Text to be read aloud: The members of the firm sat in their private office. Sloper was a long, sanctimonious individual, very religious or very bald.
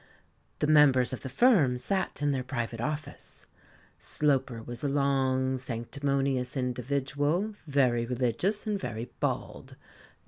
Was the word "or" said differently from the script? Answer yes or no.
yes